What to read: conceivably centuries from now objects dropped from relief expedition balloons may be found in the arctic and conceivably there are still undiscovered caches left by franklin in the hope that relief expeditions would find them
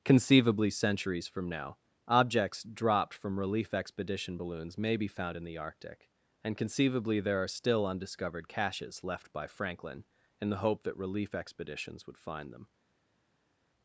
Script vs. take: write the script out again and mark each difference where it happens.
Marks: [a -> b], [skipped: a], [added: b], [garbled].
conceivably centuries from now objects dropped from relief expedition balloons may be found in the arctic and conceivably there are still undiscovered caches left by franklin in the hope that relief expeditions would find them